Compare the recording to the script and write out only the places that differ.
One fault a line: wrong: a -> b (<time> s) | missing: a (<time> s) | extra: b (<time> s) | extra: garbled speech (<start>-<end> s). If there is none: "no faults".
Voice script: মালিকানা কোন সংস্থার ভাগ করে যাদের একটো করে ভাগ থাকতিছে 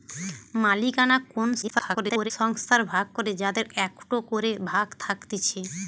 extra: garbled speech (1.6-2.3 s)